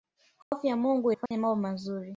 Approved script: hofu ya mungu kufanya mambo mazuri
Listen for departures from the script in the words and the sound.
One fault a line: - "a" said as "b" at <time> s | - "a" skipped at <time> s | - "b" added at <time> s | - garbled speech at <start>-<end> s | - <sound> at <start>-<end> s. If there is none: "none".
- dropout at 0.4-0.5 s
- dropout at 1.3-1.3 s